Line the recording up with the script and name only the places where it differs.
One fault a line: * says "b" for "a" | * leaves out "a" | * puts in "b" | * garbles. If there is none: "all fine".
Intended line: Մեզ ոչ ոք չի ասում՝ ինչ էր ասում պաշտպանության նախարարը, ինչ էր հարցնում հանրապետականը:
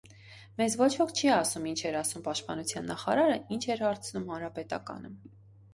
all fine